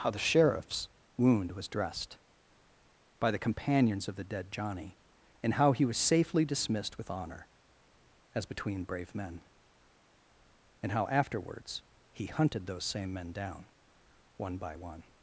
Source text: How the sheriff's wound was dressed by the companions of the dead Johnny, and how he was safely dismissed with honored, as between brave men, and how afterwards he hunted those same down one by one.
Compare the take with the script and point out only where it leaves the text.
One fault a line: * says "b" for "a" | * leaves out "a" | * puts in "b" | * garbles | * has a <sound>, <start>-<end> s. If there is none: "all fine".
* says "honor" for "honored"
* puts in "men"